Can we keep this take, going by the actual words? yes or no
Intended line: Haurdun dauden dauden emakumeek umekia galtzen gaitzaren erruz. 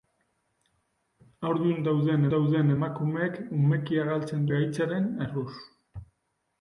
yes